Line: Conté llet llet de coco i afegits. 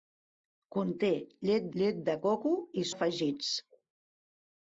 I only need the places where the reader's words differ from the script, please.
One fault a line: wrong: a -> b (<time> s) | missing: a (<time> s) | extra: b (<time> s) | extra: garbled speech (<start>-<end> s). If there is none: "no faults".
no faults